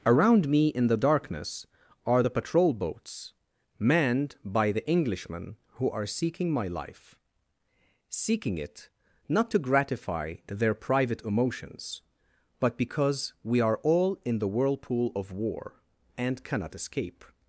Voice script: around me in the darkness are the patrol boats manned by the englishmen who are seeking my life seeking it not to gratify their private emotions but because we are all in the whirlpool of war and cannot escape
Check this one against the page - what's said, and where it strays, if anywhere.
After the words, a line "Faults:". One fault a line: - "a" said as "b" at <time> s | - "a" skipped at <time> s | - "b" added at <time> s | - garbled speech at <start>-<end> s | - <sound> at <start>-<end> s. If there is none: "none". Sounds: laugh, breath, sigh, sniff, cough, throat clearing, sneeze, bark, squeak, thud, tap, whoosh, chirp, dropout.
around me in the darkness are the patrol boats manned by the englishmen who are seeking my life seeking it not to gratify their private emotions but because we are all in the whirlpool of war and cannot escape
Faults:
none